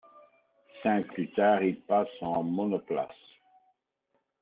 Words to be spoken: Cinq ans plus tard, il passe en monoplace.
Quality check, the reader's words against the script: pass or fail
fail